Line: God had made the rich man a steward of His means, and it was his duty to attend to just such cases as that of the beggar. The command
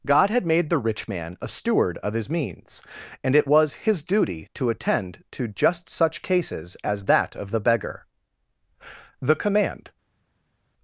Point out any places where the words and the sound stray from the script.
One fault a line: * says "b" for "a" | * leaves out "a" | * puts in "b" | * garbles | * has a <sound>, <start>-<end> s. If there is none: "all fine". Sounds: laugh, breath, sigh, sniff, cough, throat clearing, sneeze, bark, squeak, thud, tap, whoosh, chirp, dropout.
all fine